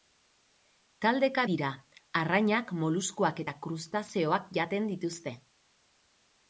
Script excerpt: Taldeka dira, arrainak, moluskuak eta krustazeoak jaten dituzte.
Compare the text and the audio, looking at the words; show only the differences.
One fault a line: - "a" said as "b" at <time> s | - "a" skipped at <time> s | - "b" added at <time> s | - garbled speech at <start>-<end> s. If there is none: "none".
none